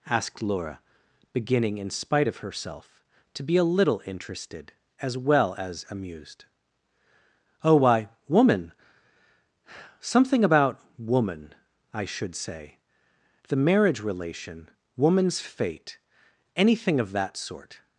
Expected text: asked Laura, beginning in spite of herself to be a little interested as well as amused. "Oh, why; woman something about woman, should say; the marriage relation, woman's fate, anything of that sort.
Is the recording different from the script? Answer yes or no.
yes